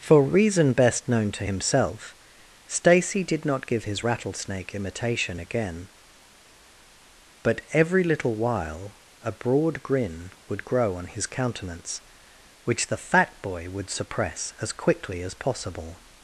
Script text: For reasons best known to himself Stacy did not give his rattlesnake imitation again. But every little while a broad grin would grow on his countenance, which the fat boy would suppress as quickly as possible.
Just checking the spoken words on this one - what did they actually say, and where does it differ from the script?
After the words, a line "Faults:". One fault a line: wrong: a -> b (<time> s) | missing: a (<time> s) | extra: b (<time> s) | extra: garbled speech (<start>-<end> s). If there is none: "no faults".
For reason best known to himself Stacy did not give his rattlesnake imitation again. But every little while a broad grin would grow on his countenance, which the fat boy would suppress as quickly as possible.
Faults:
wrong: reasons -> reason (0.2 s)